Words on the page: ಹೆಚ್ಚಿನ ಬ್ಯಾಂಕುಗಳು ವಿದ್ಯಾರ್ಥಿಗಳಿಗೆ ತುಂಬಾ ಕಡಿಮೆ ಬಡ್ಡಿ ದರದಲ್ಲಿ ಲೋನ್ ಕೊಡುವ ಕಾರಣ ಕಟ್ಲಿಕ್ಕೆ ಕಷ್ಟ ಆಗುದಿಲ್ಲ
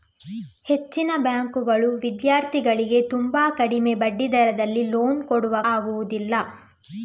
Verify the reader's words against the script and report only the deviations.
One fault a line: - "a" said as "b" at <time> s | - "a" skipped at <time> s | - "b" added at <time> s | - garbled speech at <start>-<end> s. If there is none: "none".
- "ಕಾರಣ ಕಟ್ಲಿಕ್ಕೆ ಕಷ್ಟ" skipped at 5.5 s